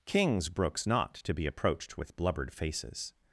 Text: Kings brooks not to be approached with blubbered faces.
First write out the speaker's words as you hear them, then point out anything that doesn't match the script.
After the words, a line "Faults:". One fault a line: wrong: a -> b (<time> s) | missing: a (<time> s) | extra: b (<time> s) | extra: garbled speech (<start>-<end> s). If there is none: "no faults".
Kings brooks not to be approached with blubbered faces.
Faults:
no faults